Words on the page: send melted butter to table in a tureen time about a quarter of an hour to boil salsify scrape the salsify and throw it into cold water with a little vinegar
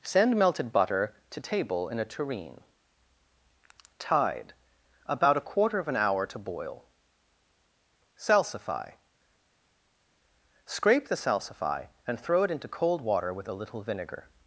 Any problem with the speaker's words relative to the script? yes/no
yes